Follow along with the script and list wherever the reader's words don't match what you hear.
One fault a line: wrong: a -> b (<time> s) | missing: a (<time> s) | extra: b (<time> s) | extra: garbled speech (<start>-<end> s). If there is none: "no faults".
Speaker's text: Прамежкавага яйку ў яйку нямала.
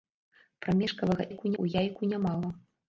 no faults